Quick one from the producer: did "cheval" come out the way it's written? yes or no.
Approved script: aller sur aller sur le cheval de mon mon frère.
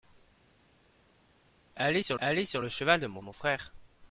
yes